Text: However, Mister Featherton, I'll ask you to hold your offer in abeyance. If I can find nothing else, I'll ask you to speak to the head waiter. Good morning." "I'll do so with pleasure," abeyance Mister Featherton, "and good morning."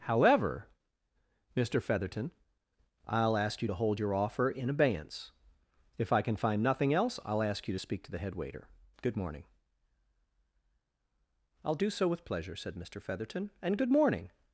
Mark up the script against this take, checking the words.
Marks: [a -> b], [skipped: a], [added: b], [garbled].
However, Mister Featherton, I'll ask you to hold your offer in abeyance. If I can find nothing else, I'll ask you to speak to the head waiter. Good morning." "I'll do so with pleasure," [abeyance -> said] Mister Featherton, "and good morning."